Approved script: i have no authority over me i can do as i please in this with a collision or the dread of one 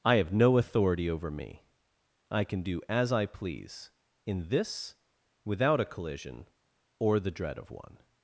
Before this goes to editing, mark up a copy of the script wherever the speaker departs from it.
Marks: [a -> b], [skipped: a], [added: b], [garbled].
i have no authority over me i can do as i please in this [with -> without] a collision or the dread of one